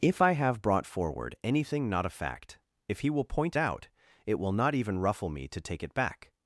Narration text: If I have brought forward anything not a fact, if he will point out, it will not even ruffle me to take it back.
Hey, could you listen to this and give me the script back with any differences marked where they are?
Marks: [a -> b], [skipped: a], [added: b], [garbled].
If I have brought forward anything not a fact, if he will point out, it will not even ruffle me to take it back.